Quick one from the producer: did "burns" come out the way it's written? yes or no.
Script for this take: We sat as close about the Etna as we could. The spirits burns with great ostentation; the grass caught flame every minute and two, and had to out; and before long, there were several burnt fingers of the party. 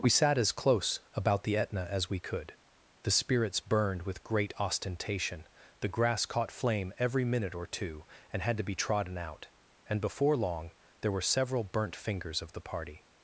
no